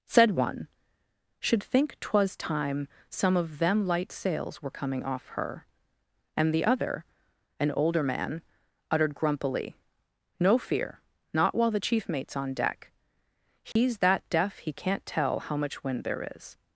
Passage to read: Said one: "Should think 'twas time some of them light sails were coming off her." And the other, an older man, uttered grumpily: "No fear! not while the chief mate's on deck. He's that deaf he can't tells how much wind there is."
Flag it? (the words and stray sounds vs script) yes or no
yes